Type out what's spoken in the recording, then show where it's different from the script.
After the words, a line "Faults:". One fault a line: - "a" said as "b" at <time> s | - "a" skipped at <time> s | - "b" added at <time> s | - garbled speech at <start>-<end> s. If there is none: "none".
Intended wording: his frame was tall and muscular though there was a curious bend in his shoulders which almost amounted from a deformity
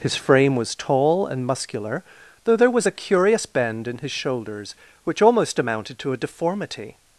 his frame was tall and muscular though there was a curious bend in his shoulders which almost amounted to a deformity
Faults:
- "from" said as "to" at 6.0 s